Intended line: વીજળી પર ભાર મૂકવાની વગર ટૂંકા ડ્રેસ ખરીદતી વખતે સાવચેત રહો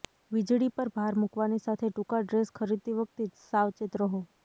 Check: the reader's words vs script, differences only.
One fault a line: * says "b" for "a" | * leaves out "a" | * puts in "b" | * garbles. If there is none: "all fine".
* says "સાથે" for "વગર"